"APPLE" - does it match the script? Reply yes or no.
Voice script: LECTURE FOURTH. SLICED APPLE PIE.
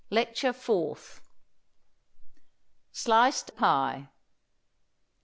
no